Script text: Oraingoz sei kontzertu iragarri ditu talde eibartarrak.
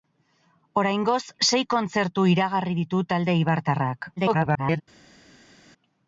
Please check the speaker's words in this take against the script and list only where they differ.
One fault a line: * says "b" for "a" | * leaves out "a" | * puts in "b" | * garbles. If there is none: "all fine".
* garbles